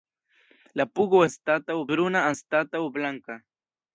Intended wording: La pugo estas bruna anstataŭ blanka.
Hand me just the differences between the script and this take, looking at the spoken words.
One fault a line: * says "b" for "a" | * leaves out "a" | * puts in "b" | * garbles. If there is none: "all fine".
* says "anstataŭ" for "estas"